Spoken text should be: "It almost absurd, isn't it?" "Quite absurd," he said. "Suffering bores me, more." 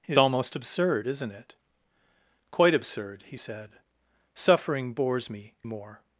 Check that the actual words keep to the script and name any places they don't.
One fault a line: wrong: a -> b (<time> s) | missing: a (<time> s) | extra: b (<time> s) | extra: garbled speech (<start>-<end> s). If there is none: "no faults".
no faults